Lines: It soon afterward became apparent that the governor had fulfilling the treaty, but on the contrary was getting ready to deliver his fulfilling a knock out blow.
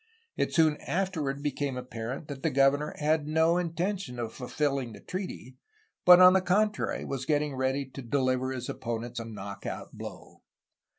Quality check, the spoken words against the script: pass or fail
fail